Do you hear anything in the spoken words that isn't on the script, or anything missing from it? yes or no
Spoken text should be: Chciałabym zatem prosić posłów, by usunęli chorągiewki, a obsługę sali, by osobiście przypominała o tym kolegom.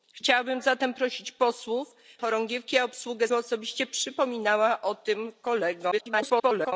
yes